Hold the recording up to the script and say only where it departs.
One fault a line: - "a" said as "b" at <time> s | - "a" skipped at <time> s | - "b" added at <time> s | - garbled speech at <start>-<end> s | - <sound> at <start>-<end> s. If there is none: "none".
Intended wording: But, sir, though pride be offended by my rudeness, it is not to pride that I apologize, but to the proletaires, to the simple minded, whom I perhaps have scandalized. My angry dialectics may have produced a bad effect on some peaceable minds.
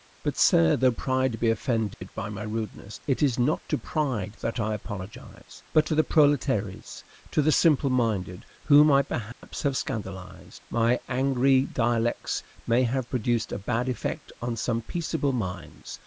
- dropout at 1.9-2.0 s
- dropout at 9.3-9.4 s